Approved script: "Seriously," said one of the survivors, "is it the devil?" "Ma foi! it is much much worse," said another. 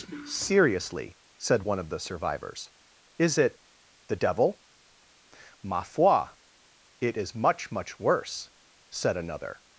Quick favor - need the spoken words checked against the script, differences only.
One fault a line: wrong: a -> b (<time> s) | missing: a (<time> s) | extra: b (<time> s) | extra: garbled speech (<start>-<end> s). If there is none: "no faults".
no faults